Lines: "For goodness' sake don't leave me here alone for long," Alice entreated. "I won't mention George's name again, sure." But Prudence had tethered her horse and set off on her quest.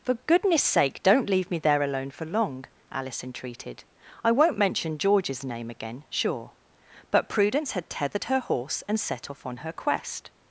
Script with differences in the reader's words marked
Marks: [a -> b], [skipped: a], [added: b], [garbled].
"For goodness' sake don't leave me [here -> there] alone for long," Alice entreated. "I won't mention George's name again, sure." But Prudence had tethered her horse and set off on her quest.